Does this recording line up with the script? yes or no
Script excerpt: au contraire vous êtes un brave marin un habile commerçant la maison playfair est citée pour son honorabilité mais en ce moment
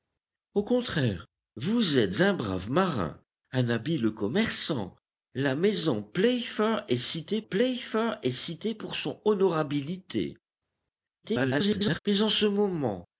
no